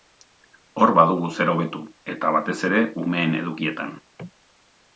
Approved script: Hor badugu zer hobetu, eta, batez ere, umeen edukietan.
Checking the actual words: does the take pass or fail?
pass